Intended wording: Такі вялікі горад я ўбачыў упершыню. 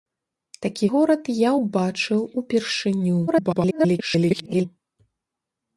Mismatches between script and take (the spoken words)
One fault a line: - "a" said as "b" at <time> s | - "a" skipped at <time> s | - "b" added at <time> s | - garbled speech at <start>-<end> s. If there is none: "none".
- "вялікі" skipped at 0.8 s
- garbled speech at 3.3-4.7 s